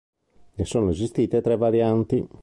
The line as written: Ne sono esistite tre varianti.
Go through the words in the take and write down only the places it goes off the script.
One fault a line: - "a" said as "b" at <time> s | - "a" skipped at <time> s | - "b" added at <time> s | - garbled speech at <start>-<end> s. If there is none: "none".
none